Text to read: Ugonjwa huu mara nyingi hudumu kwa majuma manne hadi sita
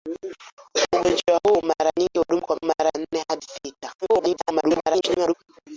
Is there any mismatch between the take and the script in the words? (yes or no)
yes